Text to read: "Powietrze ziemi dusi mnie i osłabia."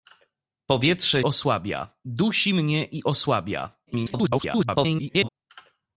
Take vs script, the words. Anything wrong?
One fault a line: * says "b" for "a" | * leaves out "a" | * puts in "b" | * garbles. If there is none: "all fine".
* says "osłabia" for "ziemi"
* garbles